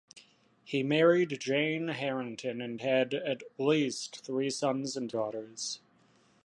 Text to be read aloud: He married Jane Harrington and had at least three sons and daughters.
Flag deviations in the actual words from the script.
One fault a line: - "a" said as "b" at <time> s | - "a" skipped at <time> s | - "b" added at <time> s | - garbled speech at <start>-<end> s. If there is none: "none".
none